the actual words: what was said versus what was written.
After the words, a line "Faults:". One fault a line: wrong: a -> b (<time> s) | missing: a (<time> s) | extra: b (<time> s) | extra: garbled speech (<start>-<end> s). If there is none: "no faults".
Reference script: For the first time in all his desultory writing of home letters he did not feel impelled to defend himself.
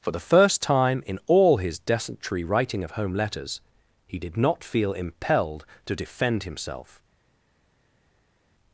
For the first time in all his desultory writing of home letters he did not feel impelled to defend himself.
Faults:
no faults